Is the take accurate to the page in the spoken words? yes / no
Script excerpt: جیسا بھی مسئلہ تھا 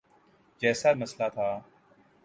no